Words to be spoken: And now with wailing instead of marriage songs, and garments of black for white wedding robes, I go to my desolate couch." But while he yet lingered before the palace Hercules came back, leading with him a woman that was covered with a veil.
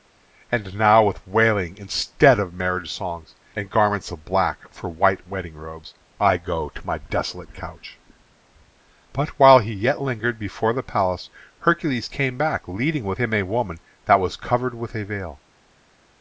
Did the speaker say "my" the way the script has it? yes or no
yes